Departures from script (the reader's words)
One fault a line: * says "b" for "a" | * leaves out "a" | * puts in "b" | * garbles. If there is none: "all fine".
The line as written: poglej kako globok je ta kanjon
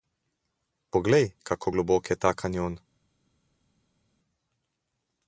all fine